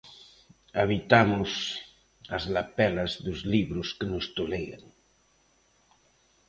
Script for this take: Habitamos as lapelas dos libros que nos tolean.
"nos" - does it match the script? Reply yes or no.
yes